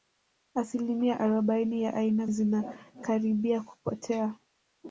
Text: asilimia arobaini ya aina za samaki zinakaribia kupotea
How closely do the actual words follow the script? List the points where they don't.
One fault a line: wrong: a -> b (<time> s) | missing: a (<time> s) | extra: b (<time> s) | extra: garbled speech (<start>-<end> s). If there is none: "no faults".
missing: za samaki (2.2 s)